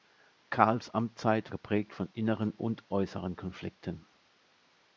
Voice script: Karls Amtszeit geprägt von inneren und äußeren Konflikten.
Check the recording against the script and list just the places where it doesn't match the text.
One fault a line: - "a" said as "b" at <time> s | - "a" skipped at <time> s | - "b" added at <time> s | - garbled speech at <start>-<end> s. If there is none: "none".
none